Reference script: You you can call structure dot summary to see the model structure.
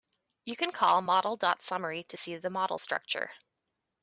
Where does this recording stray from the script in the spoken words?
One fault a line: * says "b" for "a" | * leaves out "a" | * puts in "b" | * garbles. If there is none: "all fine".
* leaves out "you"
* says "model" for "structure"